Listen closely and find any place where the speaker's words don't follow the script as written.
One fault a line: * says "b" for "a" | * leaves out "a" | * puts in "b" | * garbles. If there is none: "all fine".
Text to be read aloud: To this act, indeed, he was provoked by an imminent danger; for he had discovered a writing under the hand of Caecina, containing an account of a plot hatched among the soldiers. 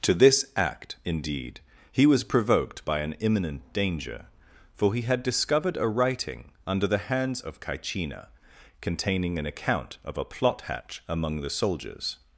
* says "hands" for "hand"
* says "hatch" for "hatched"